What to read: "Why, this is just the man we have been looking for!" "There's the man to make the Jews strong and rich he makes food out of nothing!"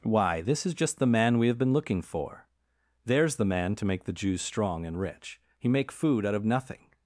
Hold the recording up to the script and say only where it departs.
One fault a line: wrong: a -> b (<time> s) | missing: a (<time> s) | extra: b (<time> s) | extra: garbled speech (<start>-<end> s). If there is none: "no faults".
wrong: makes -> make (5.7 s)